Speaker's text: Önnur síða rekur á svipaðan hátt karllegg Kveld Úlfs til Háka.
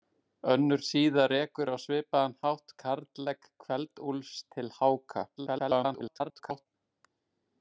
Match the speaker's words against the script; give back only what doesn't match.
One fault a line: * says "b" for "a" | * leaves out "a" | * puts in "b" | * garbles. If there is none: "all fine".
* garbles